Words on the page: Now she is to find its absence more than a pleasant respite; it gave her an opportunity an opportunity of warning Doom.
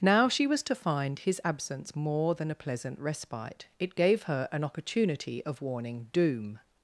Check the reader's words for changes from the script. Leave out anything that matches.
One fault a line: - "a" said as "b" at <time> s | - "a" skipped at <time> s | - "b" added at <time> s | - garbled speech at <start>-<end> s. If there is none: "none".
- "is" said as "was" at 0.5 s
- "its" said as "his" at 1.2 s
- "an opportunity" skipped at 5.4 s